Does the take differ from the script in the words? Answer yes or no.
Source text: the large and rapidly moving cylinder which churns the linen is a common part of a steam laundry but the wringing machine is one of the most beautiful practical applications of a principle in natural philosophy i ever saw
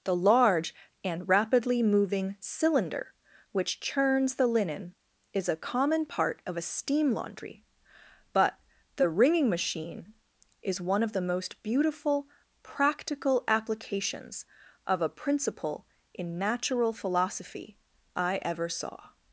no